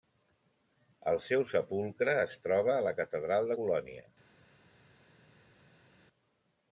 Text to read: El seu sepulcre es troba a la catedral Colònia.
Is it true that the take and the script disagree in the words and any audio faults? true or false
false